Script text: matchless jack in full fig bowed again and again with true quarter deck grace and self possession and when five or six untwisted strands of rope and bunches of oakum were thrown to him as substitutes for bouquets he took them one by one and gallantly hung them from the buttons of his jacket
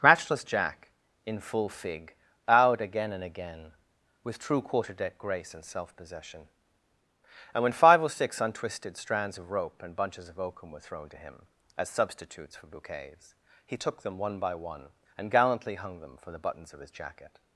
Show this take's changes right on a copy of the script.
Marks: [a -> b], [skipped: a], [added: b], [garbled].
matchless jack in full fig bowed again and again with true quarter deck grace and self possession and when five or six untwisted strands of rope and bunches of oakum were thrown to him as substitutes for bouquets he took them one by one and gallantly hung them [from -> for] the buttons of his jacket